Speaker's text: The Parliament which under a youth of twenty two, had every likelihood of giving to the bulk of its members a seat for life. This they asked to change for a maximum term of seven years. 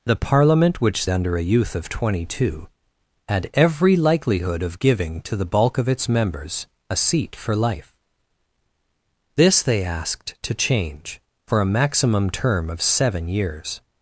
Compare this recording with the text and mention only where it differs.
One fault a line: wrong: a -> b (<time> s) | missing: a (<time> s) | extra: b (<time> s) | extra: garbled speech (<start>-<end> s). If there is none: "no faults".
no faults